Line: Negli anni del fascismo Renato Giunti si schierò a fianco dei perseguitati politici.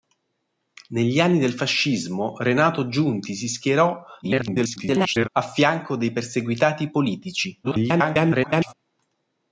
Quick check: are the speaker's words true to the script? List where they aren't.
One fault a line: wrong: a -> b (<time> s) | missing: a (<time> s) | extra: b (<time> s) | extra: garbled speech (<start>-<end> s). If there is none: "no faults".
extra: garbled speech (4.2-5.3 s)
extra: garbled speech (7.6-8.7 s)